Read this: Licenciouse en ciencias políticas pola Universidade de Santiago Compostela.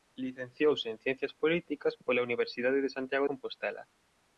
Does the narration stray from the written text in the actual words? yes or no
no